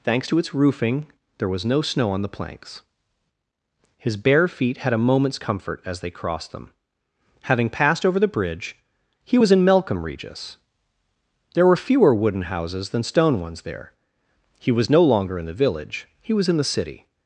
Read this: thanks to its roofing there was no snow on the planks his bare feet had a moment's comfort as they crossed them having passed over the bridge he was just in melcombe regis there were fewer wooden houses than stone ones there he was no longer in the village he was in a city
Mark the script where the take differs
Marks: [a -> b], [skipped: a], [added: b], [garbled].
thanks to its roofing there was no snow on the planks his bare feet had a moment's comfort as they crossed them having passed over the bridge he was [skipped: just] in melcombe regis there were fewer wooden houses than stone ones there he was no longer in the village he was in [a -> the] city